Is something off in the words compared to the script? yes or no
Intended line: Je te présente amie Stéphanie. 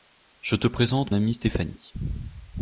no